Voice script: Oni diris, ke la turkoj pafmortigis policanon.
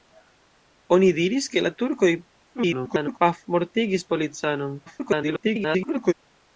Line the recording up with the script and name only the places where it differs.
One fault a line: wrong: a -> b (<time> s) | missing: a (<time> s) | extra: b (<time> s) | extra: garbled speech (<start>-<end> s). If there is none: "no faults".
extra: garbled speech (2.6-3.2 s)
extra: garbled speech (4.8-6.1 s)